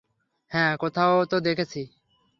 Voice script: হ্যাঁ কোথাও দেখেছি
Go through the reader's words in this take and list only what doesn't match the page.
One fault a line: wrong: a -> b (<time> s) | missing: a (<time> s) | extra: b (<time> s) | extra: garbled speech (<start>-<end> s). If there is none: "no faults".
extra: তো (1.2 s)